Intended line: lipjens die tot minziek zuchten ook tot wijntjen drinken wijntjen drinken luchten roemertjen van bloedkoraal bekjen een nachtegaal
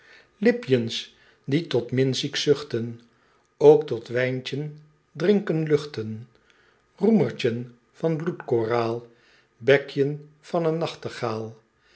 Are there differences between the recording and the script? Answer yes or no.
yes